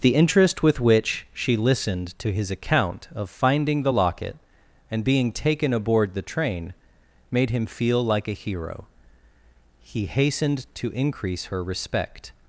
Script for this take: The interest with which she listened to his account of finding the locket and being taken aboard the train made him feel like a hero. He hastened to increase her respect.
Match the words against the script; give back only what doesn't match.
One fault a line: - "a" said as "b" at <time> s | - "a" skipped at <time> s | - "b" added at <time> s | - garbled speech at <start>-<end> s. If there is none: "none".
none